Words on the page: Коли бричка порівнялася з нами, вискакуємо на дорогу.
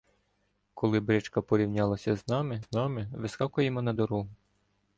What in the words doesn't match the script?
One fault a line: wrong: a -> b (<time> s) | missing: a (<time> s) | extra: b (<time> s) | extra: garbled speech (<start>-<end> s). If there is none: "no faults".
extra: з нами (2.6 s)